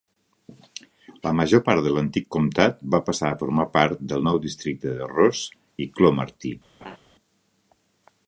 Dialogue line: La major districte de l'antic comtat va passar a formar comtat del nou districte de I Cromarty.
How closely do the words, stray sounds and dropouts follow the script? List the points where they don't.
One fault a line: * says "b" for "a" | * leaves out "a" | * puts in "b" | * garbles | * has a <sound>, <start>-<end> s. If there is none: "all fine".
* says "part" for "districte"
* says "part" for "comtat"
* puts in "Ross"
* has a laugh, 6.8-7.0 s